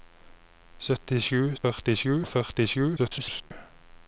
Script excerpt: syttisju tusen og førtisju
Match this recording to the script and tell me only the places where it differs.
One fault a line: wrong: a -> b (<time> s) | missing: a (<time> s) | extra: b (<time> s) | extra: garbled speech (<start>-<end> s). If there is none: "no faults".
wrong: tusen -> førtisju (1.6 s)
extra: garbled speech (3.0-3.5 s)